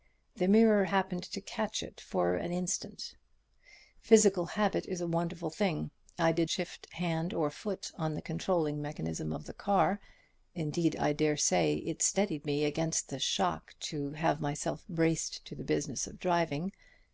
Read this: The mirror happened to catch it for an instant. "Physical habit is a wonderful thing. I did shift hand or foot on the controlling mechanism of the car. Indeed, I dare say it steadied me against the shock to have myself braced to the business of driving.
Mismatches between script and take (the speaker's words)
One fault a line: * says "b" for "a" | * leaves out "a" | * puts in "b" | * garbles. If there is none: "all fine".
all fine